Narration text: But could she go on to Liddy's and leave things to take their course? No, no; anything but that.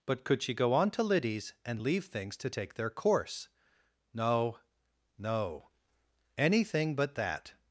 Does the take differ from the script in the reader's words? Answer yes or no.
no